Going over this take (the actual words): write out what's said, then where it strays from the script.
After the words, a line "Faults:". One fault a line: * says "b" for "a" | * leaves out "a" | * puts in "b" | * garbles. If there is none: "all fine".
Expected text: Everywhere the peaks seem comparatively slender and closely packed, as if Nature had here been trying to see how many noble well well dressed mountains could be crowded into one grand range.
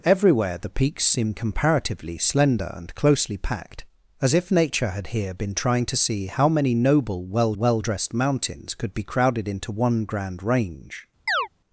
Everywhere the peaks seem comparatively slender and closely packed, as if Nature had here been trying to see how many noble well well dressed mountains could be crowded into one grand range.
Faults:
all fine